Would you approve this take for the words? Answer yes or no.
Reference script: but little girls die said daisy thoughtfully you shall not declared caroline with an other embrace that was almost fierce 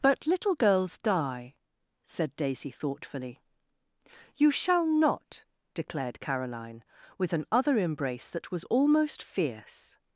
yes